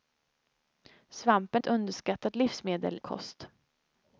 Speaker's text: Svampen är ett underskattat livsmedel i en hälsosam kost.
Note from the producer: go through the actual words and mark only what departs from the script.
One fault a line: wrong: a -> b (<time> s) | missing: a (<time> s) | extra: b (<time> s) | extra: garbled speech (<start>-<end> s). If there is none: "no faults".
missing: är (1.6 s)
missing: i en hälsosam (3.0 s)